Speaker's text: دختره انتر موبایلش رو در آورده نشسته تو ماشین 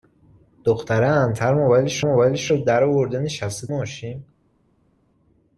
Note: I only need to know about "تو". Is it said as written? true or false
false